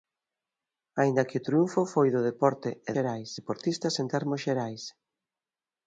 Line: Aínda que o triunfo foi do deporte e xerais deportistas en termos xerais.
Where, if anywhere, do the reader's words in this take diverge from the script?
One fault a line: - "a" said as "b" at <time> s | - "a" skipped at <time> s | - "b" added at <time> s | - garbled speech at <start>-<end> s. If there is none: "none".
none